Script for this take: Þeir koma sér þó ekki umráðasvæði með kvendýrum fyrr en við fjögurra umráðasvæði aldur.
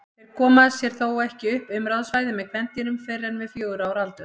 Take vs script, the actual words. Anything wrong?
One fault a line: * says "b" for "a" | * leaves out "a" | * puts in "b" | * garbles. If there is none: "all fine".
* puts in "upp"
* says "ára" for "umráðasvæði"